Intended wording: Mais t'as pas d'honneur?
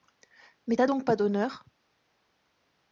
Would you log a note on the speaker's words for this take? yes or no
yes